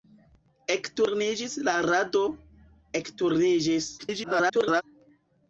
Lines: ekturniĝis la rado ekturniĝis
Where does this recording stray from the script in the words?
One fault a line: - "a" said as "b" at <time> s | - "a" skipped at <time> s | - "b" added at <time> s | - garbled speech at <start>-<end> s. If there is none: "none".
- garbled speech at 4.0-4.8 s